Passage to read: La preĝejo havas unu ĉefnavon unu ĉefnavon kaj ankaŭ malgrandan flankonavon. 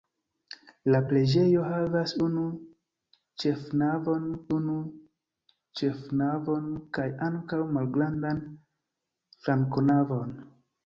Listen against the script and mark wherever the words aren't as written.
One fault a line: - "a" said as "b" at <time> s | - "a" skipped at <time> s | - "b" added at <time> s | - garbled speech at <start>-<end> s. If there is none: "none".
none